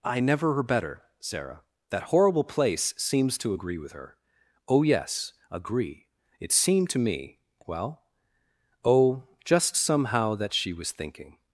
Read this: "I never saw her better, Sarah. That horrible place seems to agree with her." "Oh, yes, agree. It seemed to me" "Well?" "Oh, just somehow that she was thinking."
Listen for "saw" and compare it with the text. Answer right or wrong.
wrong